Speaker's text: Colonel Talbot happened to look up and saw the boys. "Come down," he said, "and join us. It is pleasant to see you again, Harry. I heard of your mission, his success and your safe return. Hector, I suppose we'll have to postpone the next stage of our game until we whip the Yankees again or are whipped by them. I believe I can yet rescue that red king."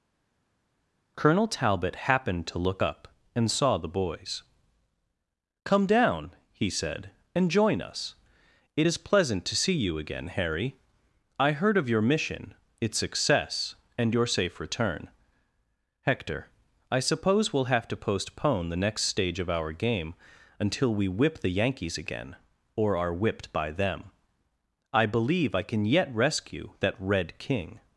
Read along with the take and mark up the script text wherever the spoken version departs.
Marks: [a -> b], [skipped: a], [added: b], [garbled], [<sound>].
Colonel Talbot happened to look up and saw the boys. "Come down," he said, "and join us. It is pleasant to see you again, Harry. I heard of your mission, [his -> its] success and your safe return. Hector, I suppose we'll have to postpone the next stage of our game until we whip the Yankees again or are whipped by them. I believe I can yet rescue that red king."